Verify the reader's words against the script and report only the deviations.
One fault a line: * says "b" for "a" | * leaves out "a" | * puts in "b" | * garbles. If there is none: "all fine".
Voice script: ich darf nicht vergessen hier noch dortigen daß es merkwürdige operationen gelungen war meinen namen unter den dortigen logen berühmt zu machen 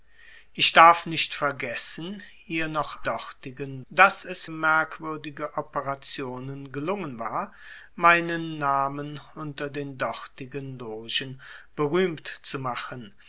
all fine